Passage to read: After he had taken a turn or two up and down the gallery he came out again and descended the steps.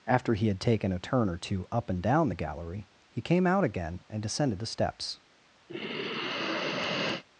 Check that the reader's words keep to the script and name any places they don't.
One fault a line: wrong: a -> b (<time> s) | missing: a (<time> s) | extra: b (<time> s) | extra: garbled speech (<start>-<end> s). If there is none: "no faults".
no faults